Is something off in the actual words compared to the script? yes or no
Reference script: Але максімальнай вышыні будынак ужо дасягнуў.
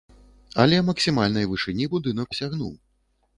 yes